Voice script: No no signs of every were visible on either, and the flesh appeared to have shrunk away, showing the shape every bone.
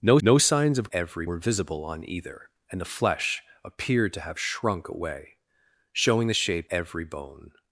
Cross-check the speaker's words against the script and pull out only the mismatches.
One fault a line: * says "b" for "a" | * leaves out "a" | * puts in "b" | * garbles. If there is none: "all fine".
all fine